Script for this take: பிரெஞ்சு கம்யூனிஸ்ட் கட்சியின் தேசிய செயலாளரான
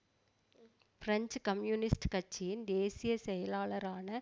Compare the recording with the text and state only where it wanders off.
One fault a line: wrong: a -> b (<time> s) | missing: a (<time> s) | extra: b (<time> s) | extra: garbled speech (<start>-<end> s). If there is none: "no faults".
no faults